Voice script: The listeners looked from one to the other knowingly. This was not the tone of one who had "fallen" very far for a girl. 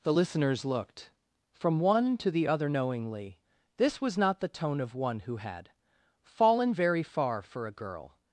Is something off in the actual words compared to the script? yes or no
no